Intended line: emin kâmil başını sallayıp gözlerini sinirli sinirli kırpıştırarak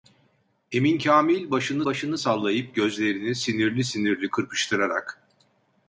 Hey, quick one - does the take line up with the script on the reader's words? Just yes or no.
no